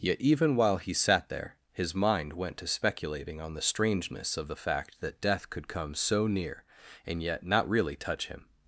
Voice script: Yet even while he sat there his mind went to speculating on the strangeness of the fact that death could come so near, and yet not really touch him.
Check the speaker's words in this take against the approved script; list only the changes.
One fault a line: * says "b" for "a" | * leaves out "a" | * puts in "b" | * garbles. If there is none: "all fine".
all fine